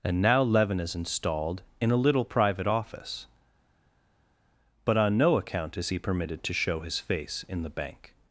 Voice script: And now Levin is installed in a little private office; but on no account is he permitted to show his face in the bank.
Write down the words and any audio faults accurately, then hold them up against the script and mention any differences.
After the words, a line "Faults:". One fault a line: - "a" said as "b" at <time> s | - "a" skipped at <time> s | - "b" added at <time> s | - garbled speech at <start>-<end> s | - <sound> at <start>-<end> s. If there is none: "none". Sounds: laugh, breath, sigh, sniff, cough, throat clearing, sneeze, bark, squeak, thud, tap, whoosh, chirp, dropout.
And now Levin is installed in a little private office; but on no account is he permitted to show his face in the bank.
Faults:
none